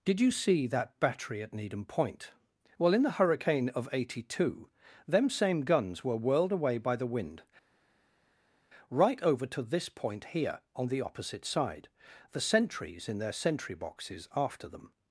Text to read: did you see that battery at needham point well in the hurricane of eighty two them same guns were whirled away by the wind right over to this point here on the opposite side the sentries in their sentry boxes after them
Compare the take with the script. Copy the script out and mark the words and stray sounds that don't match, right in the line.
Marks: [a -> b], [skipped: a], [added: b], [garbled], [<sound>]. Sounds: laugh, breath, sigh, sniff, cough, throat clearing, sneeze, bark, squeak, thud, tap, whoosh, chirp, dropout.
did you see that battery at needham point well in the hurricane of eighty two them same guns were whirled away by the wind right over to this point here on the opposite side the sentries in their sentry boxes after them